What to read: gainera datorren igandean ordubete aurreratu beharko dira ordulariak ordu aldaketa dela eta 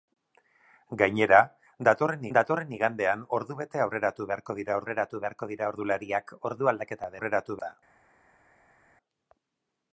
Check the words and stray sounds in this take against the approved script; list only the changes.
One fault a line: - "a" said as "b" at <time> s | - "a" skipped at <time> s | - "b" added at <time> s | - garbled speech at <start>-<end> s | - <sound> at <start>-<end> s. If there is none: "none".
- "datorren" added at 2.4 s
- "aurreratu beharko dira" added at 4.8 s
- "dela" said as "aurreratu" at 7.2 s